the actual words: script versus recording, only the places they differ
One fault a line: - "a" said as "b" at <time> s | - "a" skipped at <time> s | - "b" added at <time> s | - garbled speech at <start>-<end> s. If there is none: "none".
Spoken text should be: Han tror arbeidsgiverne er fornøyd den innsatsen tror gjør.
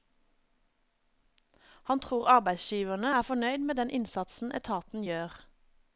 - "med" added at 3.6 s
- "tror" said as "etaten" at 4.6 s